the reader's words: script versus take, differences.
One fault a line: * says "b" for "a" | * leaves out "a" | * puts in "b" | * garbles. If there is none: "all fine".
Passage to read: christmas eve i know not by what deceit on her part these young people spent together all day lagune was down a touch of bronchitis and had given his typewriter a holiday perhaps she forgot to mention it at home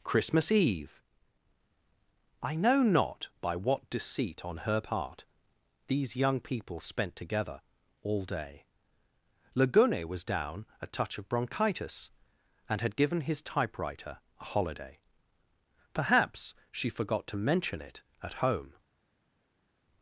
all fine